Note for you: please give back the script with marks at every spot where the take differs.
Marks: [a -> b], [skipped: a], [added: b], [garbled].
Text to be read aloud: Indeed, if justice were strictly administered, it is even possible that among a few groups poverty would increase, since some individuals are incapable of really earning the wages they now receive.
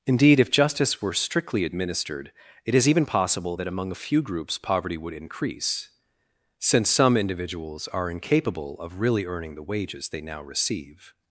Indeed, if justice were strictly administered, it is even possible that among a few groups poverty would increase, since some individuals are incapable of really earning the wages they now receive.